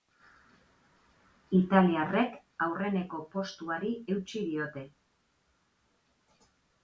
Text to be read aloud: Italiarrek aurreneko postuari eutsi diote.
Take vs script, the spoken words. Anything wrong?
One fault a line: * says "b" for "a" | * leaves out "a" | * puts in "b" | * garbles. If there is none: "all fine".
all fine